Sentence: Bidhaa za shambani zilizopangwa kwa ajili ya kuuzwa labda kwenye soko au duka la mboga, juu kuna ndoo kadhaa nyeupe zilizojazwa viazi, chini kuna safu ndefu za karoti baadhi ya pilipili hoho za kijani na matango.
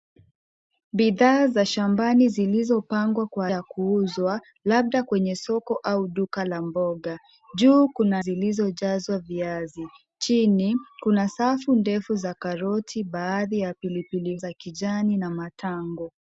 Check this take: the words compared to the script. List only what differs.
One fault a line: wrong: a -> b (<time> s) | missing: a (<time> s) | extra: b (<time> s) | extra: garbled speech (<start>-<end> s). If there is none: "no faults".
missing: ajili (3.5 s)
missing: ndoo kadhaa nyeupe (8.2 s)
missing: hoho (14.4 s)